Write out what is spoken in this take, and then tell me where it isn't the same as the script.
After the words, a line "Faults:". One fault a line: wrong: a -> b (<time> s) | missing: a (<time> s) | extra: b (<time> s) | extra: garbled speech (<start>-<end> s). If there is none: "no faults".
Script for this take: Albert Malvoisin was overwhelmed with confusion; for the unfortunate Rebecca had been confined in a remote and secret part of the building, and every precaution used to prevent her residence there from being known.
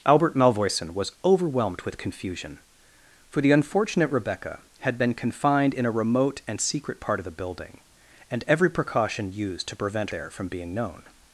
Albert Malvoisin was overwhelmed with confusion; for the unfortunate Rebecca had been confined in a remote and secret part of the building, and every precaution used to prevent there from being known.
Faults:
missing: her residence (10.1 s)